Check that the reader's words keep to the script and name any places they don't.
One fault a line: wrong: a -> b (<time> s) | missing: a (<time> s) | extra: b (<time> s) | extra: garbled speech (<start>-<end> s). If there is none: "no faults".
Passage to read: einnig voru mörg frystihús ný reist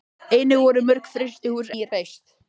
no faults